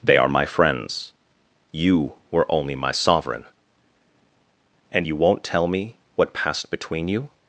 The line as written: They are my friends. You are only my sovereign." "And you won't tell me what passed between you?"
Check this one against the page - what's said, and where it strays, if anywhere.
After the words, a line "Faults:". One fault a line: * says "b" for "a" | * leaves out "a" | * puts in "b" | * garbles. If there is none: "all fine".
They are my friends. You were only my sovereign." "And you won't tell me what passed between you?"
Faults:
* says "were" for "are"